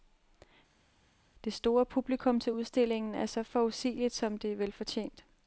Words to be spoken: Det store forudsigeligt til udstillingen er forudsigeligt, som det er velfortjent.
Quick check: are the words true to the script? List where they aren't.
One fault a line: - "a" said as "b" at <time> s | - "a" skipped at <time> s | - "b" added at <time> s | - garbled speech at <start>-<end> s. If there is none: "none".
- "forudsigeligt" said as "publikum" at 1.9 s
- "så" added at 3.3 s